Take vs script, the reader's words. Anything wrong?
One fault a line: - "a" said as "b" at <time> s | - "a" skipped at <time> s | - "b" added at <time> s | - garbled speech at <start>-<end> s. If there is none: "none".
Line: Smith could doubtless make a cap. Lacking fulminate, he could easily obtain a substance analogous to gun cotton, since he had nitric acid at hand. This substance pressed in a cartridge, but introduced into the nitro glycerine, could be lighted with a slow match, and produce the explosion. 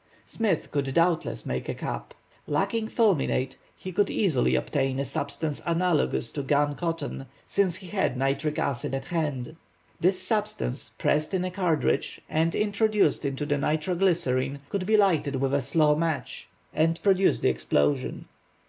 - "but" said as "and" at 12.3 s